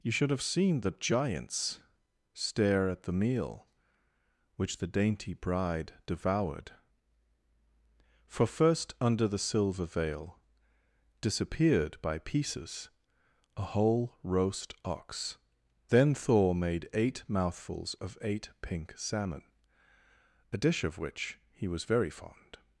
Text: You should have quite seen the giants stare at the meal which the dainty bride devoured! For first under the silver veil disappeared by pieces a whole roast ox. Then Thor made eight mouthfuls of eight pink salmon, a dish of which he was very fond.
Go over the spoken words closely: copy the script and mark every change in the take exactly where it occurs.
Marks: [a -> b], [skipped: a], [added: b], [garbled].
You should have [skipped: quite] seen the giants stare at the meal which the dainty bride devoured! For first under the silver veil disappeared by pieces a whole roast ox. Then Thor made eight mouthfuls of eight pink salmon, a dish of which he was very fond.